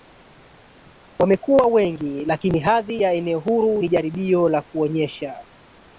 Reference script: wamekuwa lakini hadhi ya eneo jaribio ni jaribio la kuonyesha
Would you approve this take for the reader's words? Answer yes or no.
no